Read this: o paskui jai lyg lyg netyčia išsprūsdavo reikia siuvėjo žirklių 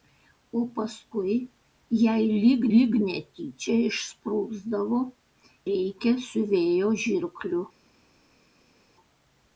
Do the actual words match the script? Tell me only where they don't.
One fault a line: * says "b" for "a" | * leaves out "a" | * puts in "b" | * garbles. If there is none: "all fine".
all fine